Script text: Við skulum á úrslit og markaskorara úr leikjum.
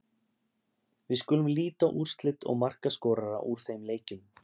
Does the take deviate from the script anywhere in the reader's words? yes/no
yes